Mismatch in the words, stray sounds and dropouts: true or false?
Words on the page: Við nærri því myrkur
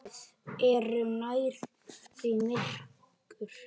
true